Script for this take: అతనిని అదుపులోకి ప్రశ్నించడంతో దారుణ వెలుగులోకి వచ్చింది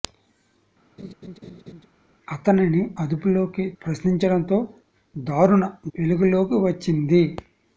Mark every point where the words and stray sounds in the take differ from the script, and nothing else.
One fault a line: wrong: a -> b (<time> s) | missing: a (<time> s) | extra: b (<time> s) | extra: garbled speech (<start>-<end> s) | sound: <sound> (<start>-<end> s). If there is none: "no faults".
sound: laugh (1.0-1.9 s)